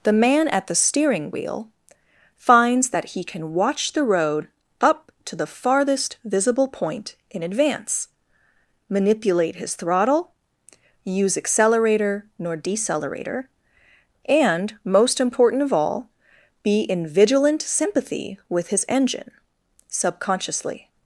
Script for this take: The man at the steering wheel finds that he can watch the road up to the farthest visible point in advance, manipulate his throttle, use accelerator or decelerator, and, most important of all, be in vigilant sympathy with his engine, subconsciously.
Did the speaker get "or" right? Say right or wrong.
wrong